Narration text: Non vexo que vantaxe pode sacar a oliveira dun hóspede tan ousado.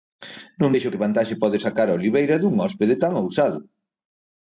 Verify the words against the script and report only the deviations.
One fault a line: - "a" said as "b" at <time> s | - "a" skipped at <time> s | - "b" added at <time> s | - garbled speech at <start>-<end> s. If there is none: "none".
none